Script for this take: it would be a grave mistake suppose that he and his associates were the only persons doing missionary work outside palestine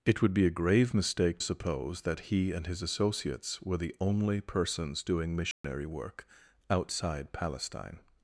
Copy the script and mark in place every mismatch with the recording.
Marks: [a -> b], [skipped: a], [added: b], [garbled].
it would be a grave mistake suppose that he and his associates were the only persons doing missionary work outside palestine